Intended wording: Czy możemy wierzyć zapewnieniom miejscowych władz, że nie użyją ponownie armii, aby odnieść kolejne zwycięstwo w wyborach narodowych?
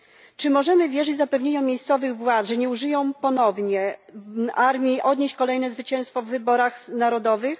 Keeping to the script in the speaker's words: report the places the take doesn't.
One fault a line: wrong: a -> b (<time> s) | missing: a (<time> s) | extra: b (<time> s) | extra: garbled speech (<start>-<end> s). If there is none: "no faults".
missing: aby (5.0 s)